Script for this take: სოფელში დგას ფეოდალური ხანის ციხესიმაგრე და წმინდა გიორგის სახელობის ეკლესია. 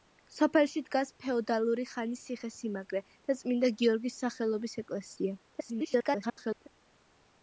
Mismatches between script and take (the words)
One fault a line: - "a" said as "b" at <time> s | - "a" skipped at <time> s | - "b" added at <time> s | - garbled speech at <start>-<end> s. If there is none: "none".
- garbled speech at 5.5-6.7 s